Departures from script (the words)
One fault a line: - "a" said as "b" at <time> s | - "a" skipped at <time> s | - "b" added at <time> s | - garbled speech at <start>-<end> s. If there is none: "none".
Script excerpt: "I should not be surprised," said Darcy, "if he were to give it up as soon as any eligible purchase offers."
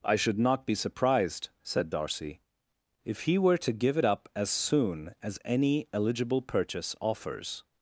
none